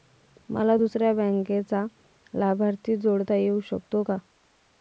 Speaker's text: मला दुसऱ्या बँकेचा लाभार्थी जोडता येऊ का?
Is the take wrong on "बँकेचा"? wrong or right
right